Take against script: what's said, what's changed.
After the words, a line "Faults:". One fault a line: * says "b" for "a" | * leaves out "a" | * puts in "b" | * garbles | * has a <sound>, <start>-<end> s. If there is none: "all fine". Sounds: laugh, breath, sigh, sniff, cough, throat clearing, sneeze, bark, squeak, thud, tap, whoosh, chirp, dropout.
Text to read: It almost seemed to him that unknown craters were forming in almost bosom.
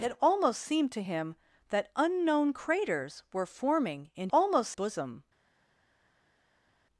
It almost seemed to him that unknown craters were forming in almost bosom.
Faults:
all fine